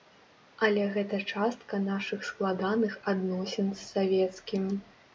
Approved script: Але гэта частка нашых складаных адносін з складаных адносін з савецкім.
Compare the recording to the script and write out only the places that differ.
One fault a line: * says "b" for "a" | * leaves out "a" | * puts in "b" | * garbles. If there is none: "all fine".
* leaves out "складаных адносін з"